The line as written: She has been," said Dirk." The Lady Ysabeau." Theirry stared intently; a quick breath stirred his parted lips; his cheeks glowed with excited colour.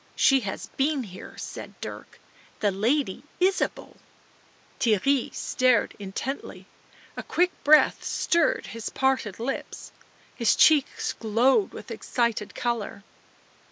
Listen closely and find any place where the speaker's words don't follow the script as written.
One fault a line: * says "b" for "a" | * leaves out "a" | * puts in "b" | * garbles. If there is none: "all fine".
* puts in "here"